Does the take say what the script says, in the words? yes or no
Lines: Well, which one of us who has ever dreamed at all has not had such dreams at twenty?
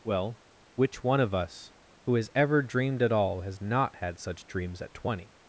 yes